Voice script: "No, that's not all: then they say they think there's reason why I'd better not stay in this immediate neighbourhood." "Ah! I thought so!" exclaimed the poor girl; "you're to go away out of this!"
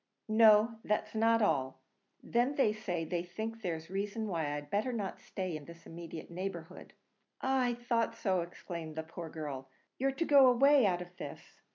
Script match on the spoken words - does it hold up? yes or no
yes